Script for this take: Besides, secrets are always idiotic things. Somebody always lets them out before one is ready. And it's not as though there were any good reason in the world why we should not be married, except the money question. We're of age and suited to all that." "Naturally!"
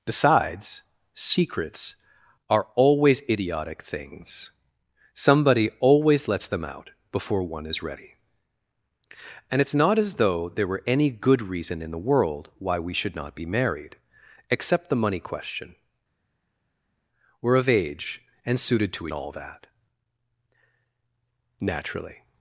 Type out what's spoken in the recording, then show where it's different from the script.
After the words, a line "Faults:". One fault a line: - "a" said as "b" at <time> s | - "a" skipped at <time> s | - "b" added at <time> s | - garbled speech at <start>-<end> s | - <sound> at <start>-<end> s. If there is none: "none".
Besides, secrets are always idiotic things. Somebody always lets them out before one is ready. And it's not as though there were any good reason in the world why we should not be married, except the money question. We're of age and suited to all that." "Naturally!"
Faults:
none